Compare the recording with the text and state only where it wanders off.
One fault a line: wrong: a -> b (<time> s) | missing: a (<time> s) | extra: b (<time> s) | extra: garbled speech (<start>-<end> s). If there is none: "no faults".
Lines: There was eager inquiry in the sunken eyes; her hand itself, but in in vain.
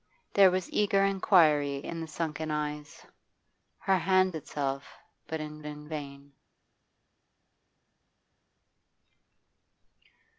no faults